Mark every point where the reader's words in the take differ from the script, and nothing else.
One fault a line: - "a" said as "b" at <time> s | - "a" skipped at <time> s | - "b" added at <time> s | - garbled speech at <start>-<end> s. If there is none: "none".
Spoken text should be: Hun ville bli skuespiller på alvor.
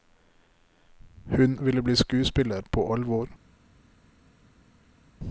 none